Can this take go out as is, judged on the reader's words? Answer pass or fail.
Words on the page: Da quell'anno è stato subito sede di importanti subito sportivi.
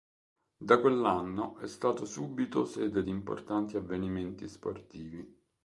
fail